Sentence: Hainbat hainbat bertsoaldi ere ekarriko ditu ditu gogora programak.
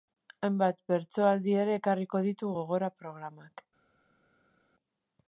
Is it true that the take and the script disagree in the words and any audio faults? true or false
true